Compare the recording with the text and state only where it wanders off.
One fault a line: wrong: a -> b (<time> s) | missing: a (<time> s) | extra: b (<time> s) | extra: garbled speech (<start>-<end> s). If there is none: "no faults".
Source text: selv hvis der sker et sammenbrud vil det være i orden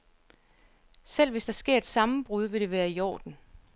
no faults